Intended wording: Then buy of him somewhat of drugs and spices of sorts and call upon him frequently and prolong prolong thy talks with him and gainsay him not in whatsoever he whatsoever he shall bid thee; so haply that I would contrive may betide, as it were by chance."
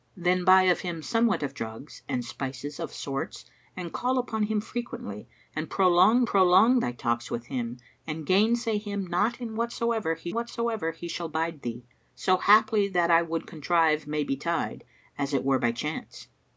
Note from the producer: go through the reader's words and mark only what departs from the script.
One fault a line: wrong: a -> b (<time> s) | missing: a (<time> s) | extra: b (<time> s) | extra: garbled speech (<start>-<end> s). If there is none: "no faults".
no faults